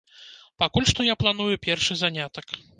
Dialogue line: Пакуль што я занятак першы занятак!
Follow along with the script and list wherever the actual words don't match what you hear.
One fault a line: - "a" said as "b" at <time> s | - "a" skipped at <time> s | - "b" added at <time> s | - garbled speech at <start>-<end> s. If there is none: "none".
- "занятак" said as "планую" at 1.2 s